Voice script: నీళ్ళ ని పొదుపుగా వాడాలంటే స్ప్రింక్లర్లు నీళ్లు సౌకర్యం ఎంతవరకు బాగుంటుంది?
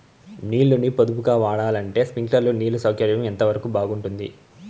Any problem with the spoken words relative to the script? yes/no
no